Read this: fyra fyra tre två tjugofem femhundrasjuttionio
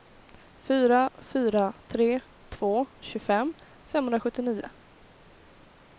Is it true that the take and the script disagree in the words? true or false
false